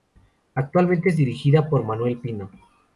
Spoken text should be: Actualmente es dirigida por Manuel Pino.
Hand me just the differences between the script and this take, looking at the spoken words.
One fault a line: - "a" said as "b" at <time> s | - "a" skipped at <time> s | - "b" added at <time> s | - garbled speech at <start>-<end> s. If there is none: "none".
none